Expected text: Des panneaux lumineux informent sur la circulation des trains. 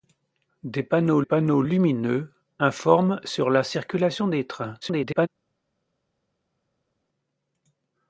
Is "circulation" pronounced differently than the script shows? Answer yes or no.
no